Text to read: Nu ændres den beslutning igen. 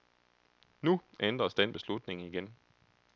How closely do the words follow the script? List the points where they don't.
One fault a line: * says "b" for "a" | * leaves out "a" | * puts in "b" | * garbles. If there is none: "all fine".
all fine